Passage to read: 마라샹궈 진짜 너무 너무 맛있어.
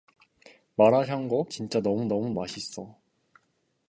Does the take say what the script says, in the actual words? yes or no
yes